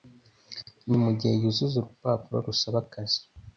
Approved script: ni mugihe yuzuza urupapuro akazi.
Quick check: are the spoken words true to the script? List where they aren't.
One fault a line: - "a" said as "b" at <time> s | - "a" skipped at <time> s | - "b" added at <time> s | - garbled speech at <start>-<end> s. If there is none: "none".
- "rusaba" added at 2.5 s